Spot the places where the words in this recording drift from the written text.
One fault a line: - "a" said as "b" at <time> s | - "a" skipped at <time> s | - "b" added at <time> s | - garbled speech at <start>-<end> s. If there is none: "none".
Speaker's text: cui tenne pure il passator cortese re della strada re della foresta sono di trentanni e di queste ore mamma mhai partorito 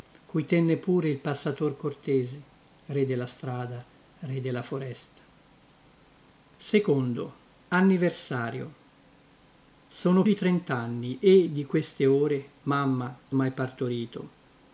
none